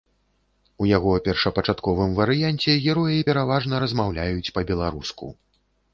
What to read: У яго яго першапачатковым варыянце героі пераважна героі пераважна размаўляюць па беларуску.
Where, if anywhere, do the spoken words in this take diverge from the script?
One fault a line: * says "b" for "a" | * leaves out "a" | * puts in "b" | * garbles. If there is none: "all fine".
* leaves out "яго"
* leaves out "героі пераважна"